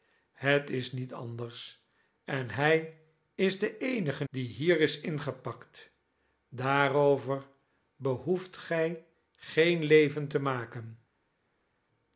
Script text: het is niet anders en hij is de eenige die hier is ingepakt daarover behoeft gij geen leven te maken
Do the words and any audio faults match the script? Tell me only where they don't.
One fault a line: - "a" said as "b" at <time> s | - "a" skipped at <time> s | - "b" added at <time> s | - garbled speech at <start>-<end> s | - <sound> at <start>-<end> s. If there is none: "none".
none